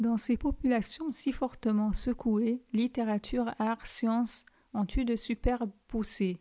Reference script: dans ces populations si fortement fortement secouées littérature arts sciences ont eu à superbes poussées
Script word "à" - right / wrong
wrong